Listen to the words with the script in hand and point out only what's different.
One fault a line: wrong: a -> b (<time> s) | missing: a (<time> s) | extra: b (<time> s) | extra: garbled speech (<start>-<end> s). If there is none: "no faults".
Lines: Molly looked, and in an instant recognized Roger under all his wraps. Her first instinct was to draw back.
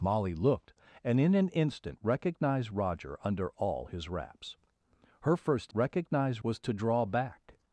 wrong: instinct -> recognized (5.7 s)